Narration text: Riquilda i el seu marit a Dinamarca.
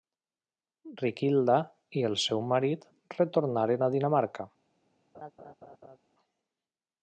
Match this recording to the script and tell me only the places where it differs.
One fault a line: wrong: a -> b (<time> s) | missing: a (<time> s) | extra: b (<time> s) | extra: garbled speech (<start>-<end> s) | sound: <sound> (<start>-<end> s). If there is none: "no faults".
extra: retornaren (3.2 s)
sound: laugh (5.1-6.0 s)